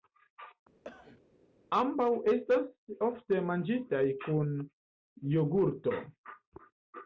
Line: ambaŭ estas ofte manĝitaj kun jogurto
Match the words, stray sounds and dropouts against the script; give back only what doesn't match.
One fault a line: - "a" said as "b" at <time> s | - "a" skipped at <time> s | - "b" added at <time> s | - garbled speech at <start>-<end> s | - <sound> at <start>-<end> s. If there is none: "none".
- cough at 0.8-1.2 s